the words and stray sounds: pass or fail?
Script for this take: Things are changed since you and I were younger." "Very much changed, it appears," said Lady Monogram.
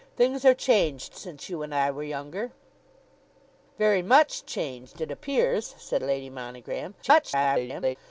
fail